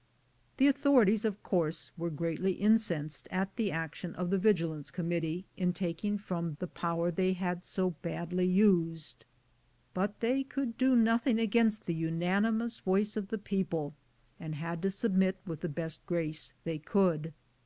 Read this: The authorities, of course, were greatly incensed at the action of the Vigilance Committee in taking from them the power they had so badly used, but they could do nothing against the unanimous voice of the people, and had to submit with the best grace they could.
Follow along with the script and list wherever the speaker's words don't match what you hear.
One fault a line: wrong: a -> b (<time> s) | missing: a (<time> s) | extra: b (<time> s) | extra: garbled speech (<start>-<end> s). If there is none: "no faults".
missing: them (6.5 s)